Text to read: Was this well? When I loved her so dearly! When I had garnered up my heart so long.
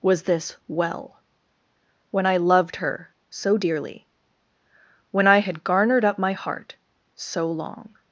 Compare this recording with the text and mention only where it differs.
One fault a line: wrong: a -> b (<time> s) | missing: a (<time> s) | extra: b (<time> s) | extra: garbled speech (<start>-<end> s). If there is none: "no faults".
no faults